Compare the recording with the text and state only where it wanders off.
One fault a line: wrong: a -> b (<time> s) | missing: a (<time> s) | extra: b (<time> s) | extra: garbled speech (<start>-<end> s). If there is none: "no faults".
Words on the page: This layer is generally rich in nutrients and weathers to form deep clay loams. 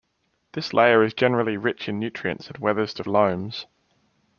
missing: form deep clay (3.0 s)